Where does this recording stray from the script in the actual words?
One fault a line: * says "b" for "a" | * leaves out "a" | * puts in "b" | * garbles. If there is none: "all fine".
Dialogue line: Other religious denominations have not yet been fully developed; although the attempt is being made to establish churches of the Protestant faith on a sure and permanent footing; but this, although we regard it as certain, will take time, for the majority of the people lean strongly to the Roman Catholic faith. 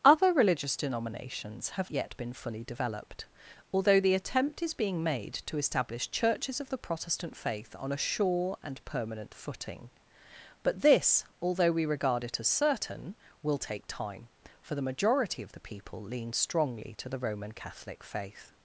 * leaves out "not"